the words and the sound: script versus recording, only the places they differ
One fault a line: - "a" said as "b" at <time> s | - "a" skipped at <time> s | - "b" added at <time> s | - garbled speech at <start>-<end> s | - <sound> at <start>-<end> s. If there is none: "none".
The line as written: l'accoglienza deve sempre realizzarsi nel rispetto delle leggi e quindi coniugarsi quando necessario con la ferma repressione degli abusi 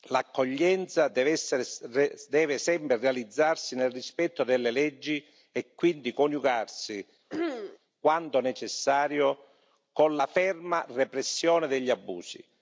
- throat clearing at 7.3-7.8 s